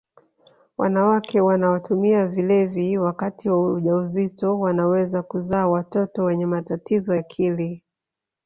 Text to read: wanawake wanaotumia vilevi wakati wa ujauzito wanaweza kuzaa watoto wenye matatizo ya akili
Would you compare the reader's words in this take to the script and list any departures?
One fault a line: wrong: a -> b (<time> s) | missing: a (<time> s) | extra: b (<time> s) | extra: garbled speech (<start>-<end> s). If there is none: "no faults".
missing: ya (7.2 s)